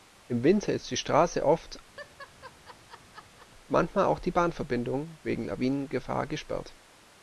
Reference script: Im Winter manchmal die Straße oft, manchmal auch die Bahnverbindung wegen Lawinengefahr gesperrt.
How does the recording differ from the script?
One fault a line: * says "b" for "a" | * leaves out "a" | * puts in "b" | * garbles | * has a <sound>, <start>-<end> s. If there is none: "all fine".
* says "ist" for "manchmal"
* has a laugh, 2.0-3.5 s